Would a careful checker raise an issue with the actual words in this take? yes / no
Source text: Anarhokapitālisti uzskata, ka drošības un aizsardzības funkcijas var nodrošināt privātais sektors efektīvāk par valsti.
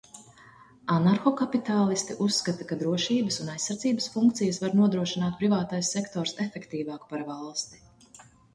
no